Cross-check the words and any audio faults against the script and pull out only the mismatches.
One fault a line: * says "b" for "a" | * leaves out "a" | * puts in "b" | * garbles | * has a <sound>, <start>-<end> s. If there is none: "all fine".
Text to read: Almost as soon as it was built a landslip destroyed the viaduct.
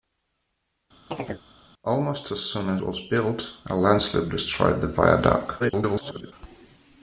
* has a chirp, 1.1-1.4 s
* leaves out "as it"
* garbles